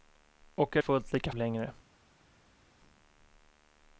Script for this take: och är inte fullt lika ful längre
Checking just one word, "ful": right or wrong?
wrong